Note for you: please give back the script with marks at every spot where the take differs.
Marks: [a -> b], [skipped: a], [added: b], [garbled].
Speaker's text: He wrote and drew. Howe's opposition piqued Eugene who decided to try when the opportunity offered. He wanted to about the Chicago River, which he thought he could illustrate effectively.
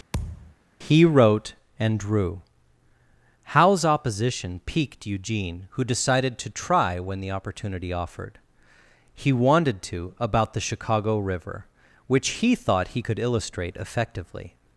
He wrote and drew. Howe's opposition piqued Eugene who decided to try when the opportunity offered. He wanted to about the Chicago River, which he thought he could illustrate effectively.